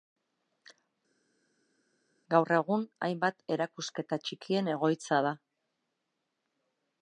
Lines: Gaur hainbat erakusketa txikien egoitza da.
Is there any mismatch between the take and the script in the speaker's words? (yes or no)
yes